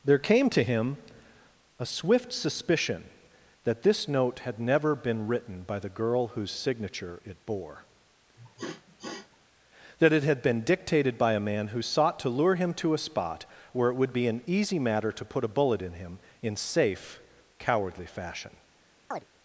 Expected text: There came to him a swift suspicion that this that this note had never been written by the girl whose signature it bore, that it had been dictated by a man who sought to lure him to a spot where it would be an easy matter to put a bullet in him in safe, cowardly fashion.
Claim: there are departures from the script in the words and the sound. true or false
true